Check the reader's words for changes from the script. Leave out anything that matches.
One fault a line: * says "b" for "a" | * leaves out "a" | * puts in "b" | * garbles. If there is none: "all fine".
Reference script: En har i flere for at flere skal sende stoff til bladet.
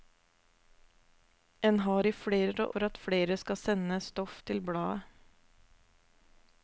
all fine